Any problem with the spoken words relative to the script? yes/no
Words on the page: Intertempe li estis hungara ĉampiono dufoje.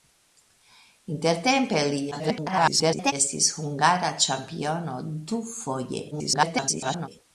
yes